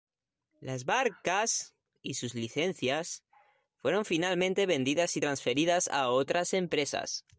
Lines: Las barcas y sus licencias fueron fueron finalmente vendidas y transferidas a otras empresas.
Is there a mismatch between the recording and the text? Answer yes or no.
yes